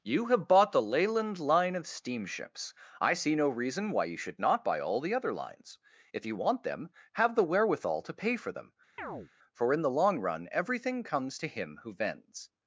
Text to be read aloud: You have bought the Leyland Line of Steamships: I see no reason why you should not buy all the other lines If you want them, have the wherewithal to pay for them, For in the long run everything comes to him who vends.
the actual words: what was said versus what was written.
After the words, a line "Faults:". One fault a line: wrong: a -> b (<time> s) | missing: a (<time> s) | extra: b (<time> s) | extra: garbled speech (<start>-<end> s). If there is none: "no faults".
You have bought the Leyland Line of Steamships: I see no reason why you should not buy all the other lines If you want them, have the wherewithal to pay for them, For in the long run everything comes to him who vends.
Faults:
no faults